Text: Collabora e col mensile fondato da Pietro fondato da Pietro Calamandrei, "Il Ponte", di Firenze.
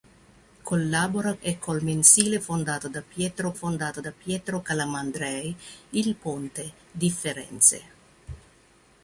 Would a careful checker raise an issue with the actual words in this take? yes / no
no